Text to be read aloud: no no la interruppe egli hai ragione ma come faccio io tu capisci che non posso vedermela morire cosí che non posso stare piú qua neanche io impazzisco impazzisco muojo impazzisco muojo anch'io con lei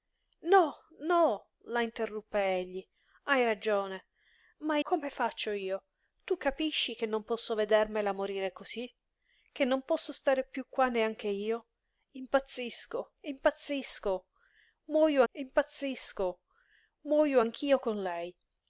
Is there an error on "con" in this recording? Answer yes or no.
no